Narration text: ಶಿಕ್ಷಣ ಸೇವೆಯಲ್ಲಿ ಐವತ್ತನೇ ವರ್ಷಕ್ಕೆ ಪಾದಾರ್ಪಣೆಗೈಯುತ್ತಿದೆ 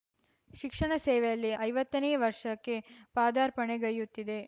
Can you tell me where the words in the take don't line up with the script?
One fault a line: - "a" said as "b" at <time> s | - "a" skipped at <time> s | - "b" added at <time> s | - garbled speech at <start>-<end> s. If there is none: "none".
none